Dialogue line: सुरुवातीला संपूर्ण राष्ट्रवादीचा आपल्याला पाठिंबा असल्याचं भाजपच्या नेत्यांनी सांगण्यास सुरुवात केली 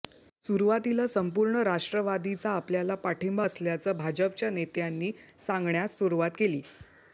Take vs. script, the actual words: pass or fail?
pass